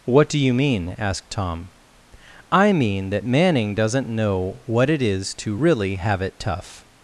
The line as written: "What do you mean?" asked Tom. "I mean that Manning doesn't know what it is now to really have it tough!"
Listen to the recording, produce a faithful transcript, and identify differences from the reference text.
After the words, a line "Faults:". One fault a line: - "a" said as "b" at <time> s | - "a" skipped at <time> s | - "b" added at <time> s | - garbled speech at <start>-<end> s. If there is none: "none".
"What do you mean?" asked Tom. "I mean that Manning doesn't know what it is to really have it tough!"
Faults:
- "now" skipped at 5.3 s